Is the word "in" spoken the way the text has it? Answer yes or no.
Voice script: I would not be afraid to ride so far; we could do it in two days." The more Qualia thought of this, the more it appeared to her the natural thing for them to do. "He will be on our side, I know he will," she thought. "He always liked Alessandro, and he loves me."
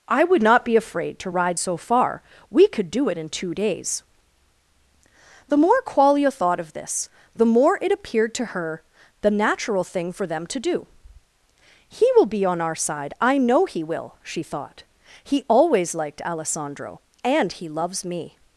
yes